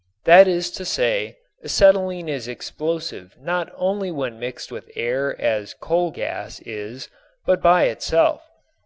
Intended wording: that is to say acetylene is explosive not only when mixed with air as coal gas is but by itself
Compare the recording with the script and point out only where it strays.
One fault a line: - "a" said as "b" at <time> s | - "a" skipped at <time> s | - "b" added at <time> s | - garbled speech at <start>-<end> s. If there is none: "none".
none